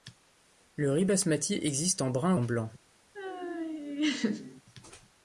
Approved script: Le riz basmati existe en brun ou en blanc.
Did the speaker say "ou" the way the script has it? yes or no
no